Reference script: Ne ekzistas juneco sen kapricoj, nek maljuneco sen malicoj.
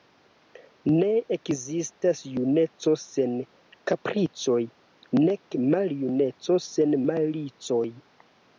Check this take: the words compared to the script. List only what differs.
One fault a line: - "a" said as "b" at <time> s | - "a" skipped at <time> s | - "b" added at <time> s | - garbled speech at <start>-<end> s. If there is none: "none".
none